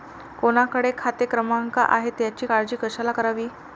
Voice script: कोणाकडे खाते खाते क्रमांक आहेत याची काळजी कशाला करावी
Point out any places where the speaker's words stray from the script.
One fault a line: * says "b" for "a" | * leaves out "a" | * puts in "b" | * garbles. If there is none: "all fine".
* leaves out "खाते"